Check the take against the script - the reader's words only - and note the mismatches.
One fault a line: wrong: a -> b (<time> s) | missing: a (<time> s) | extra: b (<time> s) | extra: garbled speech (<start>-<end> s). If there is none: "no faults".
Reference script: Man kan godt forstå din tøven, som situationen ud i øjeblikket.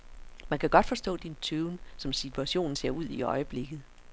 extra: ser (2.7 s)